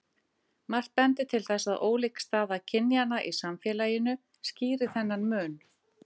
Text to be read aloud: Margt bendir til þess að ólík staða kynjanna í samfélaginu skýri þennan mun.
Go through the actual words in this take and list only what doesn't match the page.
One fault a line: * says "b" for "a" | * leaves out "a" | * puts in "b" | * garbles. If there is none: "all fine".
all fine